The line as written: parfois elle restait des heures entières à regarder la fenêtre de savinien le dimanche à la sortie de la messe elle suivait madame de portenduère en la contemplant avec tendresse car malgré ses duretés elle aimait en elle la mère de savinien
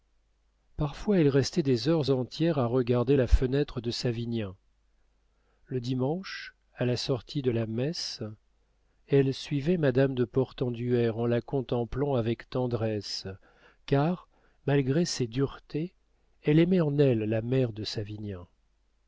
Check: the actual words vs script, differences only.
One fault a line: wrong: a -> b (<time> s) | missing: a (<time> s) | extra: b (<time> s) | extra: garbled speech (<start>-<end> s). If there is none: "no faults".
no faults